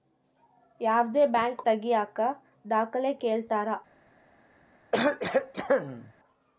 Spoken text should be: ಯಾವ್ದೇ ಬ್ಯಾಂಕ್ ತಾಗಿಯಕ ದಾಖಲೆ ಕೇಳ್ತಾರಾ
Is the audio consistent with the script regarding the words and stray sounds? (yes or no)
no